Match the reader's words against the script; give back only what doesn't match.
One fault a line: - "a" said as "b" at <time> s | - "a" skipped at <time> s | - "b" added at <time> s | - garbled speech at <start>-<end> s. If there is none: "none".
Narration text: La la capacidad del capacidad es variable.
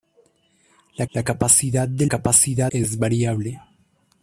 none